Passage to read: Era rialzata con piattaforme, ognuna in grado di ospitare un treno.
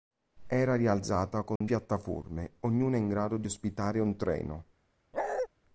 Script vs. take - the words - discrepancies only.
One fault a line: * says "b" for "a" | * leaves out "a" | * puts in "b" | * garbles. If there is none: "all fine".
all fine